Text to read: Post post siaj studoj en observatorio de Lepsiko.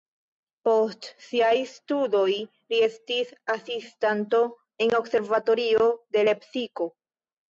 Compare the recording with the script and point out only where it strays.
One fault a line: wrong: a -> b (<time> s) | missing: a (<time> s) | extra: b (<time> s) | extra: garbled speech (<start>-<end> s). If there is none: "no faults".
missing: post (1.1 s)
extra: li estis asistanto (2.4 s)